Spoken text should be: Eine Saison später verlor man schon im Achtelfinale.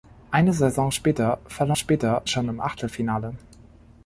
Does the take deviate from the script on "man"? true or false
true